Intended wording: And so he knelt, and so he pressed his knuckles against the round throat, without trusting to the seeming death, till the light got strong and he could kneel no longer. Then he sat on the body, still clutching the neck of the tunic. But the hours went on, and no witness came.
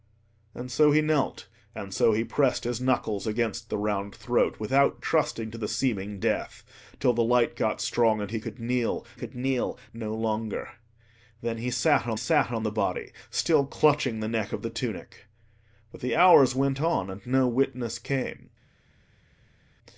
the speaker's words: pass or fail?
fail